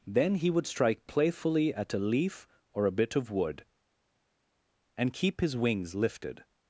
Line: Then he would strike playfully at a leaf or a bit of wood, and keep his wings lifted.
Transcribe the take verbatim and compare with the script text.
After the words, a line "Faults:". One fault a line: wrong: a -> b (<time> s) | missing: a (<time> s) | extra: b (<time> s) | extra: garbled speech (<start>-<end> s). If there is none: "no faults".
Then he would strike playfully at a leaf or a bit of wood, and keep his wings lifted.
Faults:
no faults